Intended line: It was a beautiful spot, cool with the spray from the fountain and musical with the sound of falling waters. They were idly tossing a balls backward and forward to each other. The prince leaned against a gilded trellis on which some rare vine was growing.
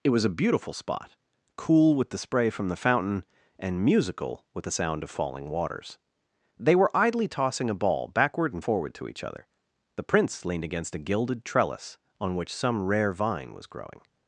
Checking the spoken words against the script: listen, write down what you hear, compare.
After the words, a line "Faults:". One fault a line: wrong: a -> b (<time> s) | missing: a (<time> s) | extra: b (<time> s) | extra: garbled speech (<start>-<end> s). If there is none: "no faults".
It was a beautiful spot, cool with the spray from the fountain and musical with the sound of falling waters. They were idly tossing a ball backward and forward to each other. The prince leaned against a gilded trellis on which some rare vine was growing.
Faults:
wrong: balls -> ball (7.7 s)